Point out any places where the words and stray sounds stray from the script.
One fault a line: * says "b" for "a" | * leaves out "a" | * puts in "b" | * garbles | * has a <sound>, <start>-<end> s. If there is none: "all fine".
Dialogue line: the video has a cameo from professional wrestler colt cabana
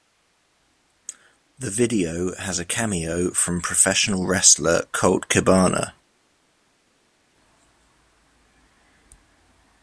all fine